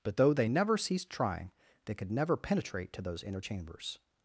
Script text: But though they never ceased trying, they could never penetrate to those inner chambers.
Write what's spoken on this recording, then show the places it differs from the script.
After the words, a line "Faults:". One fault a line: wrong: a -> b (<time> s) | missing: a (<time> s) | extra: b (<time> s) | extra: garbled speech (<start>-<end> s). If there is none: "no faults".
But though they never ceased trying, they could never penetrate to those inner chambers.
Faults:
no faults